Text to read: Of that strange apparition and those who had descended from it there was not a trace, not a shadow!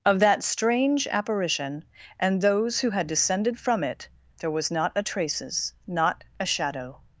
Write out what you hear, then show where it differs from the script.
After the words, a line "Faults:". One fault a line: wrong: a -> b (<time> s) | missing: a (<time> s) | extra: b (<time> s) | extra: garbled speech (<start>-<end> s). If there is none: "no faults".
Of that strange apparition and those who had descended from it there was not a traces, not a shadow!
Faults:
wrong: trace -> traces (5.0 s)